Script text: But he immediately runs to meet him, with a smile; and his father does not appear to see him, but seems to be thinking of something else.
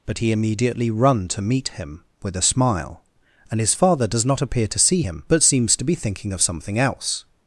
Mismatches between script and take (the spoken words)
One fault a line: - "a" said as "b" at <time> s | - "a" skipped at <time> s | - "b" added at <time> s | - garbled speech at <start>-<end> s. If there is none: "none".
- "runs" said as "run" at 0.9 s